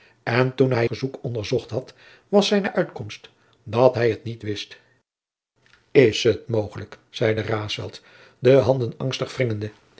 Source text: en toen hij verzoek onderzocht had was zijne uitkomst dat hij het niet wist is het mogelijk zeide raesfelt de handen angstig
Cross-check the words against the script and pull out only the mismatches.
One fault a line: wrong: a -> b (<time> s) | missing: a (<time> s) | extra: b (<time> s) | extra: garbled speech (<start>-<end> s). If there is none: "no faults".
no faults